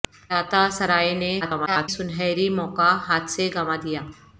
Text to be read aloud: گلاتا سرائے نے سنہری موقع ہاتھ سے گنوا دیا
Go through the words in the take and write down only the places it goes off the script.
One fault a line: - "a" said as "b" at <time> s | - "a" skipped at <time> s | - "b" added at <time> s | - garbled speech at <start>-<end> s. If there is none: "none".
- garbled speech at 1.4-1.9 s